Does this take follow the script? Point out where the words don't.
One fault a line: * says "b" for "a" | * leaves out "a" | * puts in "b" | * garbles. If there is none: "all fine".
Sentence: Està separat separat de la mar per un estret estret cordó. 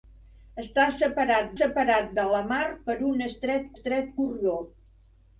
all fine